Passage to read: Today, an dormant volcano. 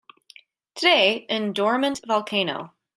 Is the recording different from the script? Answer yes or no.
no